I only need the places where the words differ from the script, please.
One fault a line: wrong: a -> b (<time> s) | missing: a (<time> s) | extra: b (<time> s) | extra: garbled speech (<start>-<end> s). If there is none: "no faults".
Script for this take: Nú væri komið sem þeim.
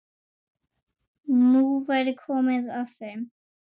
wrong: sem -> að (2.8 s)